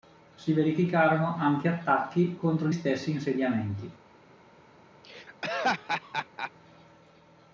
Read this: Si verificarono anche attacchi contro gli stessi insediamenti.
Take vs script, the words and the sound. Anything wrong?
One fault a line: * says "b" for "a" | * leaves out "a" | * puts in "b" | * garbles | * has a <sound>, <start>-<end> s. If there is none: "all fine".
* leaves out "gli"
* has a laugh, 5.0-6.5 s